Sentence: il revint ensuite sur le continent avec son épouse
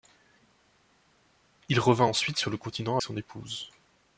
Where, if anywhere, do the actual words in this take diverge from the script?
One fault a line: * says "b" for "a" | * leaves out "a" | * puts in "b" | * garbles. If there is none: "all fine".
* leaves out "avec"